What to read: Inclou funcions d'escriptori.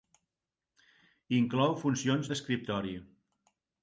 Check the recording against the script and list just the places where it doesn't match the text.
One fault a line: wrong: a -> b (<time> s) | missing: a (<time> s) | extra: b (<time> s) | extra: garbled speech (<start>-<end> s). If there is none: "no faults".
no faults